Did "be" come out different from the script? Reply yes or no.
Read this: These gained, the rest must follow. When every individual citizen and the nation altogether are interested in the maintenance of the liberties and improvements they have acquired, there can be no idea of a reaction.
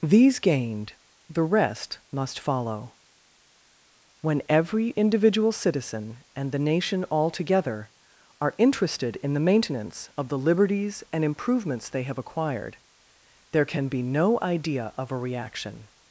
no